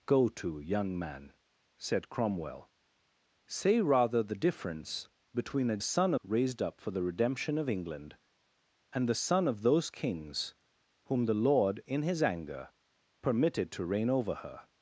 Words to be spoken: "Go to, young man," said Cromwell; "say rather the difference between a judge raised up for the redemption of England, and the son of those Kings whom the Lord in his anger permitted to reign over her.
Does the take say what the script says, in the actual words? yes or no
no